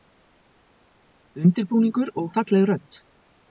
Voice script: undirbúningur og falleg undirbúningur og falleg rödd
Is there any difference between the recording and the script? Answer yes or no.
yes